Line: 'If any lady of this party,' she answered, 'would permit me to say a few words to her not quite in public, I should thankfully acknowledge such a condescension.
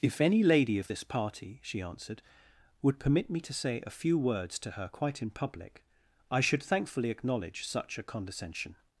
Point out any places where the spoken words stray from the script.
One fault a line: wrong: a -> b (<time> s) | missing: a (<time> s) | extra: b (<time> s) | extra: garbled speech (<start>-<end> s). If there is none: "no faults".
missing: not (4.9 s)